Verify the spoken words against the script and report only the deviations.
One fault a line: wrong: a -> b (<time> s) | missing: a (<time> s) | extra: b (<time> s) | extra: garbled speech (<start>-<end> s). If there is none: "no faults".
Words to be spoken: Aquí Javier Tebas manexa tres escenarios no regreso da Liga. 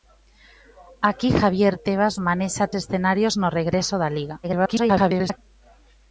missing: tres (2.6 s)
extra: garbled speech (4.4-5.4 s)